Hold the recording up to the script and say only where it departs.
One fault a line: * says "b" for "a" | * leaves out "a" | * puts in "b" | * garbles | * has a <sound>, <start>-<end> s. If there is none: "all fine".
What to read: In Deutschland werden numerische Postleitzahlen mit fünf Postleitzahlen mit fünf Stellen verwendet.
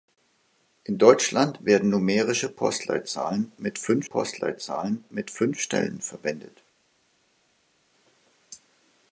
all fine